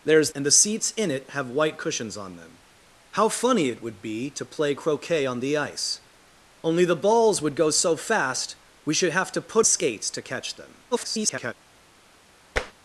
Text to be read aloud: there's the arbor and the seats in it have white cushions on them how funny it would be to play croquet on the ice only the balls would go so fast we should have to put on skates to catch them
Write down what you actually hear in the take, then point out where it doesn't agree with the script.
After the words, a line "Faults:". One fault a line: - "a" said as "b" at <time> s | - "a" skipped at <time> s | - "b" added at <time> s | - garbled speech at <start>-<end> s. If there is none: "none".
there's and the seats in it have white cushions on them how funny it would be to play croquet on the ice only the balls would go so fast we should have to put skates to catch them [garbled]
Faults:
- "the arbor" skipped at 0.3 s
- "on" skipped at 9.7 s
- garbled speech at 10.9-11.5 s